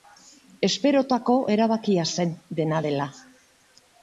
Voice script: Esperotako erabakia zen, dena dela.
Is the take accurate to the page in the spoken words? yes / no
yes